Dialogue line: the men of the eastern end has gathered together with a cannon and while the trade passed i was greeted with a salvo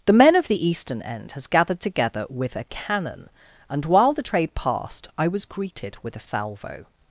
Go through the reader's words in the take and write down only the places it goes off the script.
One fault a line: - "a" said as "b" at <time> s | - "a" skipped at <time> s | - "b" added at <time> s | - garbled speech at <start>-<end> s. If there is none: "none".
none